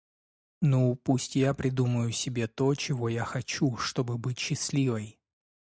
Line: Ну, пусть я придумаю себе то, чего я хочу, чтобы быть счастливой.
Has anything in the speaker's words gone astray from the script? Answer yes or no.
no